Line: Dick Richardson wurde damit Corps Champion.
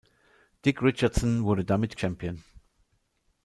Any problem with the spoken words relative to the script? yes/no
yes